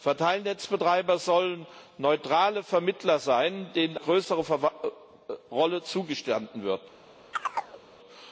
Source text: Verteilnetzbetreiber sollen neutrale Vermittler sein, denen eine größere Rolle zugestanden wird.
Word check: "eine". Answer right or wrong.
wrong